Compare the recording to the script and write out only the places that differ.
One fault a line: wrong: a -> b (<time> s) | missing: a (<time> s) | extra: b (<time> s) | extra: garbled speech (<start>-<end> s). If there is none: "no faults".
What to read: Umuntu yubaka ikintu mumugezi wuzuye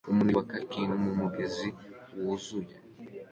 no faults